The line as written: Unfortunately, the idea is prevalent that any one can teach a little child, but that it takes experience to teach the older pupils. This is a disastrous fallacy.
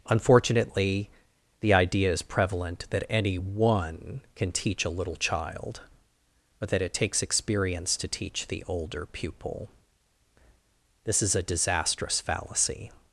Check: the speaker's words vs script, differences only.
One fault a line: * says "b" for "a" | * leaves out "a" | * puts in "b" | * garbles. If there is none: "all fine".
* says "pupil" for "pupils"